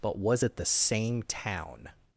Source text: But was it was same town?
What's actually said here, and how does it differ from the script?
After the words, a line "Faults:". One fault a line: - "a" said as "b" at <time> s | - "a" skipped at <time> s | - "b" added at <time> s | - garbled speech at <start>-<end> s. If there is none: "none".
But was it the same town?
Faults:
- "was" said as "the" at 0.6 s